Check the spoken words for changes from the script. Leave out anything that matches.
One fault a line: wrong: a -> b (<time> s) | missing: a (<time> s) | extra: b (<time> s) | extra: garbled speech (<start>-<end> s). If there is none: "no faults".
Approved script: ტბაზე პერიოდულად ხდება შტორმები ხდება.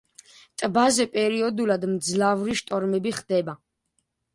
wrong: ხდება -> მძლავრი (1.9 s)